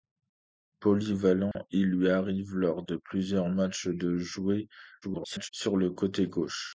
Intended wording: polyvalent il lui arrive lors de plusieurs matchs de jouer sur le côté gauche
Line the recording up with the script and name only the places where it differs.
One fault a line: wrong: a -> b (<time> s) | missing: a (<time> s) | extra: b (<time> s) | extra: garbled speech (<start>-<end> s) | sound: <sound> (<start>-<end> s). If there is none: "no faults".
sound: dropout (1.5-1.6 s)
extra: garbled speech (5.0-5.5 s)